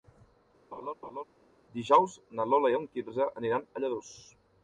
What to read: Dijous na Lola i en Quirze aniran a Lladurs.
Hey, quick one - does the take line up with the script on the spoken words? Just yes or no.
yes